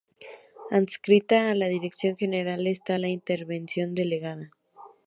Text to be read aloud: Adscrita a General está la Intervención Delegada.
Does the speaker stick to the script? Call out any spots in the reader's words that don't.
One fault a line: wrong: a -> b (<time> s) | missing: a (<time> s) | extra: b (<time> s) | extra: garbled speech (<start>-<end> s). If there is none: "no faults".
extra: la Dirección (1.5 s)